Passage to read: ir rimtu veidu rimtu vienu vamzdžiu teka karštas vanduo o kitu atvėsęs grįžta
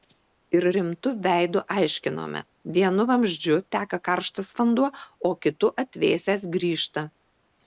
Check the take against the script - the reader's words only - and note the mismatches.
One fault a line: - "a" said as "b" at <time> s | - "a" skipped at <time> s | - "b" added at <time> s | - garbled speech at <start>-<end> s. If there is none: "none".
- "rimtu" said as "aiškinome" at 1.8 s